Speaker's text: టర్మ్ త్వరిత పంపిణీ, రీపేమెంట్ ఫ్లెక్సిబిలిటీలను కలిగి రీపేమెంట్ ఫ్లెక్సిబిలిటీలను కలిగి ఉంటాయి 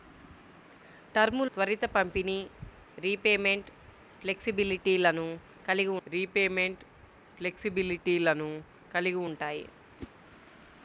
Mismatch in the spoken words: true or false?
false